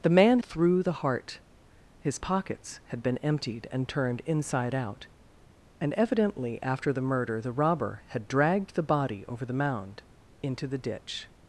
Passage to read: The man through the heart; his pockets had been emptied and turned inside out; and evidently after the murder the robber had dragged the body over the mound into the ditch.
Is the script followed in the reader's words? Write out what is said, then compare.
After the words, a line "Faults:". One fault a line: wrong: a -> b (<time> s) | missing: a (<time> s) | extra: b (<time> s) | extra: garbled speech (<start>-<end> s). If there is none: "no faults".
The man through the heart; his pockets had been emptied and turned inside out; and evidently after the murder the robber had dragged the body over the mound into the ditch.
Faults:
no faults